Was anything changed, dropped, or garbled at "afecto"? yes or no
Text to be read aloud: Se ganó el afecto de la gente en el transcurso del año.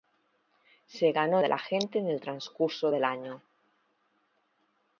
yes